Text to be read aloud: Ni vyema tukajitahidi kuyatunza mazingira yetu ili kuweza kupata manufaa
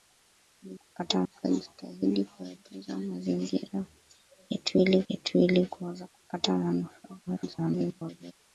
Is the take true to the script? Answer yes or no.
no